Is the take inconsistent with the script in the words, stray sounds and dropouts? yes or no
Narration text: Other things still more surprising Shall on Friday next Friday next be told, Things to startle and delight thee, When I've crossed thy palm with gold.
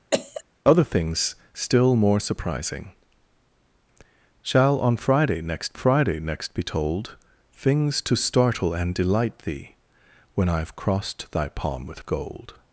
yes